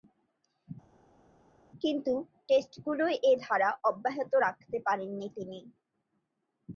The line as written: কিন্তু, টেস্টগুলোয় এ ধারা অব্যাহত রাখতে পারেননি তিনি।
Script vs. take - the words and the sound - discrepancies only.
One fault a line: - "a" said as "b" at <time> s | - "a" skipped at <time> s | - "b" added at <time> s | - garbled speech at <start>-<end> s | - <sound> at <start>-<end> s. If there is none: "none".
none